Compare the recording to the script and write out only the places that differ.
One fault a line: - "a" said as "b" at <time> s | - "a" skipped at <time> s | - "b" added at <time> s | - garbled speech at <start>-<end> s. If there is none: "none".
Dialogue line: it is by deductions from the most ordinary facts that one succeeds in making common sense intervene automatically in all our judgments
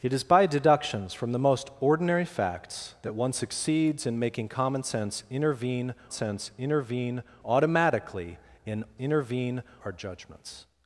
- "sense intervene" added at 6.1 s
- "all" said as "intervene" at 9.0 s